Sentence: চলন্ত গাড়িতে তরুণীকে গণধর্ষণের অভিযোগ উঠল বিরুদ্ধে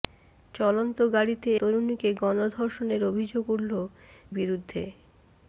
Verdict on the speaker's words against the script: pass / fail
pass